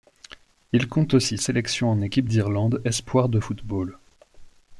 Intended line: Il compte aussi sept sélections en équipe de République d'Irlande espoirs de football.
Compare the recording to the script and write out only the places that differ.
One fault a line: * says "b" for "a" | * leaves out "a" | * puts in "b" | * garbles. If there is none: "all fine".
* leaves out "sept"
* leaves out "de République"